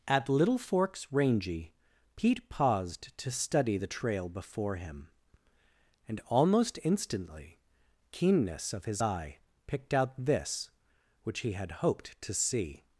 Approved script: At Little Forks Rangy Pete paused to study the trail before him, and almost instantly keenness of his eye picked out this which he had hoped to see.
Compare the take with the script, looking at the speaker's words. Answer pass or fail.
pass